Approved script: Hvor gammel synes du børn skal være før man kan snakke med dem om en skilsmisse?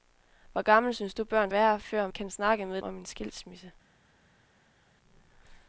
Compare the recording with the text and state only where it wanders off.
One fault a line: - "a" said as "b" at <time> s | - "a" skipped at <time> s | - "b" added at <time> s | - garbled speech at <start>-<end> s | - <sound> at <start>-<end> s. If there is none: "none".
- "skal" skipped at 1.5 s
- "man" skipped at 2.1 s
- "dem" skipped at 2.8 s